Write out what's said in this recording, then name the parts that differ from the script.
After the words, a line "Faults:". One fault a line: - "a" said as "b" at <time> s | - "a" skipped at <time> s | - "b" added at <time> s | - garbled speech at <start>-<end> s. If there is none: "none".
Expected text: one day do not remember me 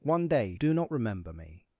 one day do not remember me
Faults:
none